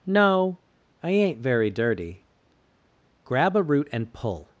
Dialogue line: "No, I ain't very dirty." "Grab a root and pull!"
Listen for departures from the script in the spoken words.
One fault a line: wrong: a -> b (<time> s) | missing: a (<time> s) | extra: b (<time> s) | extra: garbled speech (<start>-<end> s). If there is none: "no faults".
no faults